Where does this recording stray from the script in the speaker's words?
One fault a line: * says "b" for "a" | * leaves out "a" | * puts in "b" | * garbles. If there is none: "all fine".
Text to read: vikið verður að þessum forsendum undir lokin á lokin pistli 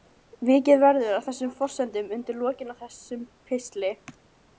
* says "þessum" for "lokin"